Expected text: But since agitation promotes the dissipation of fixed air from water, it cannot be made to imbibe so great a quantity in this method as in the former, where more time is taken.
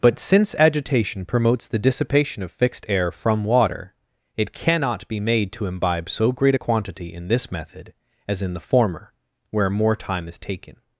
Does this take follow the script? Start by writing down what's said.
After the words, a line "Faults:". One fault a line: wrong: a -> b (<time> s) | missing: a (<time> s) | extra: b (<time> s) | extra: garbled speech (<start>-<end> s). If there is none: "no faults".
But since agitation promotes the dissipation of fixed air from water, it cannot be made to imbibe so great a quantity in this method as in the former, where more time is taken.
Faults:
no faults